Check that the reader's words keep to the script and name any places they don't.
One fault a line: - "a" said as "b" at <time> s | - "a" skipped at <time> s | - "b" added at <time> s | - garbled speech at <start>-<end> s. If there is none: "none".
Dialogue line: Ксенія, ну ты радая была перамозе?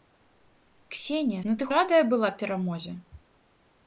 none